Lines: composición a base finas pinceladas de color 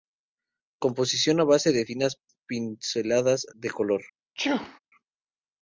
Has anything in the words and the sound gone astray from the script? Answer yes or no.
yes